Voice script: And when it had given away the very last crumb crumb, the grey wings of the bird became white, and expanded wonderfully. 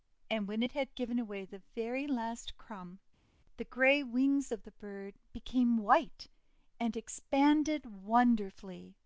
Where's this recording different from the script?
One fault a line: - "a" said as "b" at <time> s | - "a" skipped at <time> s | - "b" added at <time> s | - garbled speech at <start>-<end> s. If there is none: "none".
- "crumb" skipped at 3.0 s